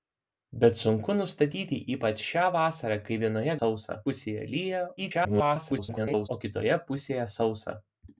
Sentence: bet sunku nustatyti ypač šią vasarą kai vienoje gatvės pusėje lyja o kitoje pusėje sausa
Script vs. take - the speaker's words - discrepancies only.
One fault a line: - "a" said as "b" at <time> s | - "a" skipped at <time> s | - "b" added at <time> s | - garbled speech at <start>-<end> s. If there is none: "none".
- "gatvės" said as "sausa" at 3.6 s
- garbled speech at 5.0-6.3 s